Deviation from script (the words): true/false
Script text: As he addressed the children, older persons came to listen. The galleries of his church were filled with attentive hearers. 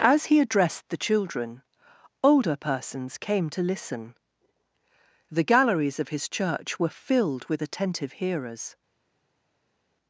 false